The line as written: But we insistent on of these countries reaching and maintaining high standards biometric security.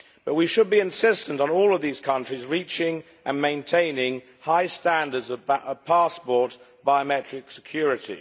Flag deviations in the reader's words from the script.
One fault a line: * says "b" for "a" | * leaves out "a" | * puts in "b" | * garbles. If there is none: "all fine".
* puts in "should be"
* puts in "all"
* puts in "of passport"